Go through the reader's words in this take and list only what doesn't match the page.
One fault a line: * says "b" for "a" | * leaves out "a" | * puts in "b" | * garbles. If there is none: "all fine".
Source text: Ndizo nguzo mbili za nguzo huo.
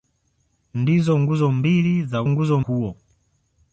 all fine